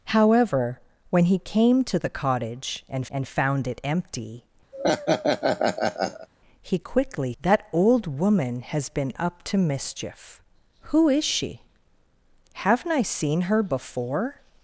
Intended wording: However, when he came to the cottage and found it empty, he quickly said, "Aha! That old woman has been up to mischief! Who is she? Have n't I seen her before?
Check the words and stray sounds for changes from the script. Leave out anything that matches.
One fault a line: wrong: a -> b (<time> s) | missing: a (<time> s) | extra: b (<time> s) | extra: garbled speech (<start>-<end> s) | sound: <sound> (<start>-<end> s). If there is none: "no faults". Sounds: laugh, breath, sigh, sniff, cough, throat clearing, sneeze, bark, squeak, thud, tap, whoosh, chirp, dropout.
extra: and (3.1 s)
sound: laugh (4.7-6.3 s)
missing: said Aha (7.3 s)